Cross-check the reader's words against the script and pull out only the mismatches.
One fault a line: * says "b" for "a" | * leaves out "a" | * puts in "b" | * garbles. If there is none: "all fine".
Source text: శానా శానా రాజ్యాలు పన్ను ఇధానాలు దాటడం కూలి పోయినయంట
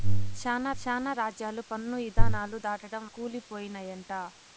all fine